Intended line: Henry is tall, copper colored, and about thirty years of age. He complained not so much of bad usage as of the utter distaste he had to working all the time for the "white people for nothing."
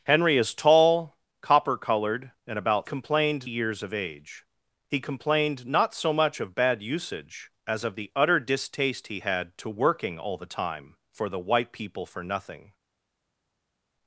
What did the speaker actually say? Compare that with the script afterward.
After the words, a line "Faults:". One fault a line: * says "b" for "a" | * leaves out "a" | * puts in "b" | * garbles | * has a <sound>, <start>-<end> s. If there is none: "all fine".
Henry is tall, copper colored, and about complained years of age. He complained not so much of bad usage as of the utter distaste he had to working all the time for the "white people for nothing."
Faults:
* says "complained" for "thirty"